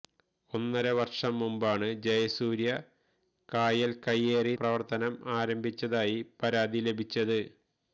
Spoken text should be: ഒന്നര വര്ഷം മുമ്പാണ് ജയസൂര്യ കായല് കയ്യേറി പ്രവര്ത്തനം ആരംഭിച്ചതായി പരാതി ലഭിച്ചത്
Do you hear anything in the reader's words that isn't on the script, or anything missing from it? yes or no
no